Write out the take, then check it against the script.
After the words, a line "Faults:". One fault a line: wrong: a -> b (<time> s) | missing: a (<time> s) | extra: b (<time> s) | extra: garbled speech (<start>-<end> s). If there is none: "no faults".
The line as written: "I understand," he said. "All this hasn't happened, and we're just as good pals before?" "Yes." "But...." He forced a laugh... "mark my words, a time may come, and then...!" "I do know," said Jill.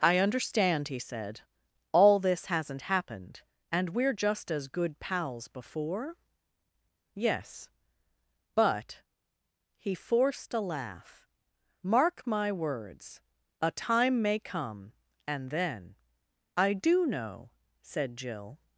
"I understand," he said. "All this hasn't happened, and we're just as good pals before?" "Yes." "But...." He forced a laugh... "mark my words, a time may come, and then...!" "I do know," said Jill.
Faults:
no faults